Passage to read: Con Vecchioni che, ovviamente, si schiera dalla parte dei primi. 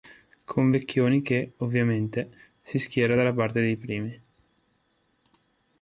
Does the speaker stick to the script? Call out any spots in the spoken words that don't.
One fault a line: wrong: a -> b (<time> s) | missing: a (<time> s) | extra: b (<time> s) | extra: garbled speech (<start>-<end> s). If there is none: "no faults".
no faults